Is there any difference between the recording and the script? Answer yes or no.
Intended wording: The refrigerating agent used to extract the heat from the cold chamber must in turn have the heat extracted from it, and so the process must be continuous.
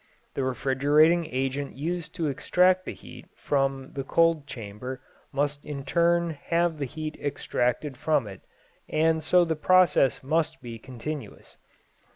no